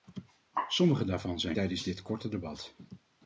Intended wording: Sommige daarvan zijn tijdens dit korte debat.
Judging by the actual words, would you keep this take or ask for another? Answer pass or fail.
pass